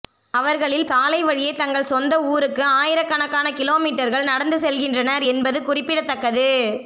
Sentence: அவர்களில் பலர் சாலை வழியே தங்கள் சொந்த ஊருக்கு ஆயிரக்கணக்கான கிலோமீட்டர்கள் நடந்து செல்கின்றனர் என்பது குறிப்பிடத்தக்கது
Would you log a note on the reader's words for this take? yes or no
yes